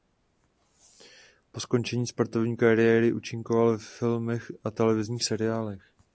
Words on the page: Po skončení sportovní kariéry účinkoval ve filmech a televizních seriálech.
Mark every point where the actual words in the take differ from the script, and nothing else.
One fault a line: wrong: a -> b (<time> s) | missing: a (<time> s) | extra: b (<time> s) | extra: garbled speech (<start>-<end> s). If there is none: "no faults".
no faults